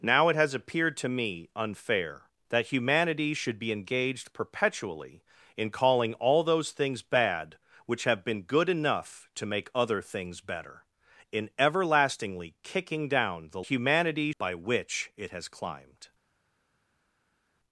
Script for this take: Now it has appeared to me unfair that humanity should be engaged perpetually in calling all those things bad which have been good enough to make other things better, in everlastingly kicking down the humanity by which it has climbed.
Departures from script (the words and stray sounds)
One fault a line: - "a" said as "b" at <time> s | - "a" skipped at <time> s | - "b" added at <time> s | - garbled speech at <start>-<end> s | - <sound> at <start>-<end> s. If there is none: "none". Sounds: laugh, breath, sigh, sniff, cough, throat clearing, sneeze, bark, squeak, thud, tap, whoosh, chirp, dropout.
none